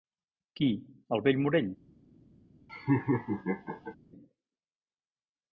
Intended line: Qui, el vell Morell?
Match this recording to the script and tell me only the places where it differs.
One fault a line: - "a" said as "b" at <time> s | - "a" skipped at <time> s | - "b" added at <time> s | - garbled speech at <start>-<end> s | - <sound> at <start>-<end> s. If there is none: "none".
- laugh at 2.7-4.0 s